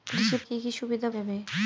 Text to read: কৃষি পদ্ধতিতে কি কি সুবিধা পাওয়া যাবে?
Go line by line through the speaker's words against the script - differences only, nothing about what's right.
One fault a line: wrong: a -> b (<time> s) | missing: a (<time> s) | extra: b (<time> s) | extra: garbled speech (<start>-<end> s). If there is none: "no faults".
missing: পদ্ধতিতে (0.4 s)
missing: পাওয়া (1.1 s)